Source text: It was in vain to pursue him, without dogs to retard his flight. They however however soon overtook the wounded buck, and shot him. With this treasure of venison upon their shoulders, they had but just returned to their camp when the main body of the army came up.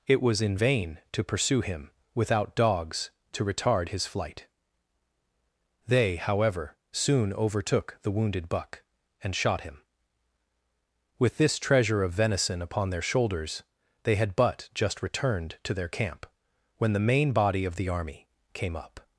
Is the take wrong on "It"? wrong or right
right